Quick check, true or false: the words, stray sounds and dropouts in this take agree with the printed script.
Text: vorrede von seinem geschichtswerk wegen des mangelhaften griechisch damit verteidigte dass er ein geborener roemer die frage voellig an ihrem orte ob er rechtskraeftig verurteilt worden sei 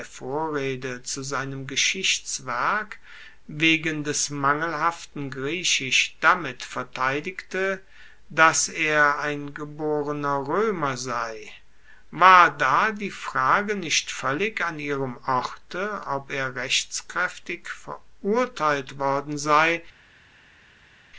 false